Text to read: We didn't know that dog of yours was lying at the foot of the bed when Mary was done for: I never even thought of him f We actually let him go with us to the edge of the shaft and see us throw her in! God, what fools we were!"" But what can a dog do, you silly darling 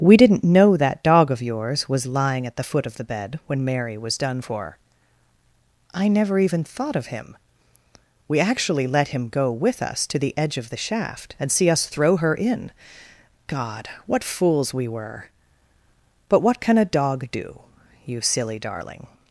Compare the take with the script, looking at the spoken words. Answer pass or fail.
fail